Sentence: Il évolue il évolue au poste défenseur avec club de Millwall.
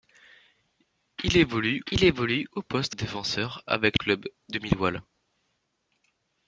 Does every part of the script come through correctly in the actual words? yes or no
yes